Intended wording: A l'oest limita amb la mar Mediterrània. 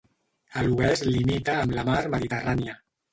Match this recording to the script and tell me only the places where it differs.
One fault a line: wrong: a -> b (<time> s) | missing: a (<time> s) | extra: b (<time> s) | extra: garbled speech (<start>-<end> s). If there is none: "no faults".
no faults